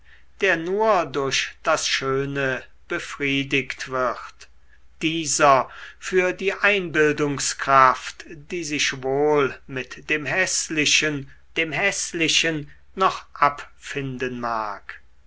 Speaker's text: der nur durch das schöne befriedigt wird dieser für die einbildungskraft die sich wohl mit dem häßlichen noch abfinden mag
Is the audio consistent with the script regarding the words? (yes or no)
no